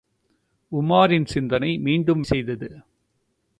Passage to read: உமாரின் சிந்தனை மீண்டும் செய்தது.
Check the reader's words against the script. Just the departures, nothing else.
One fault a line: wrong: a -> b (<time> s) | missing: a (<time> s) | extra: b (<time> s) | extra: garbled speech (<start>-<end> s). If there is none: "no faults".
no faults